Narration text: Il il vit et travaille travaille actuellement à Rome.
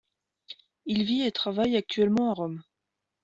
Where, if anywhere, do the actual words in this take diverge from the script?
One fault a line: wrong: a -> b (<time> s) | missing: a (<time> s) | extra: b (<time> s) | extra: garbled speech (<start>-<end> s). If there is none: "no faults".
missing: il (1.0 s)
missing: travaille (1.8 s)